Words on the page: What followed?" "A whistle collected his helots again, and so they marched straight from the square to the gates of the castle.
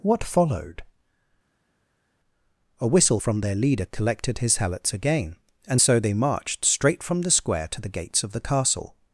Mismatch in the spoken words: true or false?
true